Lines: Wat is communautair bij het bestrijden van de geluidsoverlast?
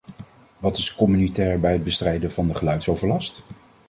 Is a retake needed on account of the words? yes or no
no